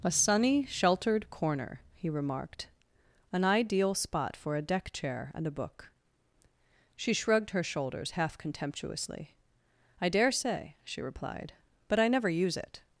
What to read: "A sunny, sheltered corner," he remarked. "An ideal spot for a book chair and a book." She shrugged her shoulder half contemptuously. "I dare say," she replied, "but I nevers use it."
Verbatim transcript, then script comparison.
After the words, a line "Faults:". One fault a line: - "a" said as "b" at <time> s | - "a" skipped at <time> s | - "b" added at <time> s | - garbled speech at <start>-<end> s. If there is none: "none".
"A sunny, sheltered corner," he remarked. "An ideal spot for a deck chair and a book." She shrugged her shoulders half contemptuously. "I dare say," she replied, "but I never use it."
Faults:
- "book" said as "deck" at 4.6 s
- "shoulder" said as "shoulders" at 7.6 s
- "nevers" said as "never" at 12.1 s